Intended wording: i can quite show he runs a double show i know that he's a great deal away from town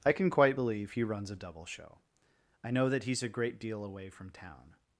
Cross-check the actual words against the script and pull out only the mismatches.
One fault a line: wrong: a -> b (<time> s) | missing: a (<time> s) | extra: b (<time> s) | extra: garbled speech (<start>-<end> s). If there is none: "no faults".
wrong: show -> believe (0.5 s)